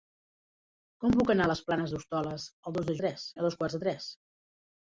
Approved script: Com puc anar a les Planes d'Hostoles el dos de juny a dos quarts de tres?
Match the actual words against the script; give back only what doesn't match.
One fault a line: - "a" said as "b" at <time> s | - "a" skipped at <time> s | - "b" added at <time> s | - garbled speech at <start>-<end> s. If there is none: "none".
- "juny" said as "tres" at 3.0 s